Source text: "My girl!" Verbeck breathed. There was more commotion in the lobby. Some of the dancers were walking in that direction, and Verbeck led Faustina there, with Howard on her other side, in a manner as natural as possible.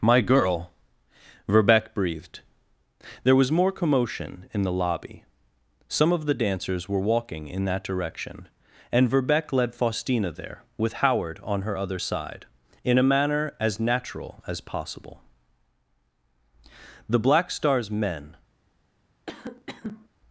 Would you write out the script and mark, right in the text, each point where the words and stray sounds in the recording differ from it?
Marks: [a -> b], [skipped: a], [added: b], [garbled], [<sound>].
"My girl!" Verbeck breathed. There was more commotion in the lobby. Some of the dancers were walking in that direction, and Verbeck led Faustina there, with Howard on her other side, in a manner as natural as possible. [added: The Black Star's men] [cough]